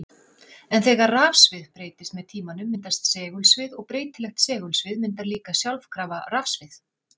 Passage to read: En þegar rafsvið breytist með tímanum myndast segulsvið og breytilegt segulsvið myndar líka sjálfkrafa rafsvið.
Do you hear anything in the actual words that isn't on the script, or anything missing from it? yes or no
no